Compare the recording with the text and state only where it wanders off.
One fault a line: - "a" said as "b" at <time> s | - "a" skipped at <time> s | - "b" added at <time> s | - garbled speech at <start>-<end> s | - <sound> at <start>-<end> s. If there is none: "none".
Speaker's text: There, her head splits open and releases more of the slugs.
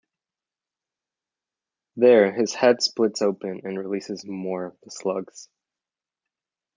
- "her" said as "his" at 2.3 s